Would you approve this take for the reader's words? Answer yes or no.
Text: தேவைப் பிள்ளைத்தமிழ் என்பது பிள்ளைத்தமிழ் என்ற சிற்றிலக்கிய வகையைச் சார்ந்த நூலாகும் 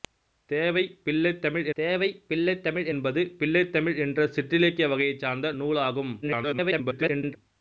no